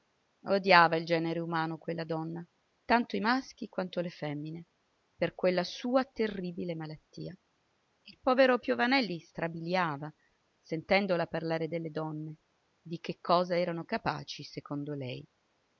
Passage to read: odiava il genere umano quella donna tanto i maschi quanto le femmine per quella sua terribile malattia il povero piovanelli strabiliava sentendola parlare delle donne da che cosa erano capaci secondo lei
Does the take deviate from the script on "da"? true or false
true